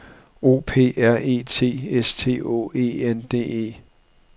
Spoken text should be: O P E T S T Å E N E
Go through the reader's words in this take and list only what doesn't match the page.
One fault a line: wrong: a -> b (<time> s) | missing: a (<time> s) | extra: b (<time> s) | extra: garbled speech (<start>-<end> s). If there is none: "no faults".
extra: R (1.0 s)
extra: D (3.3 s)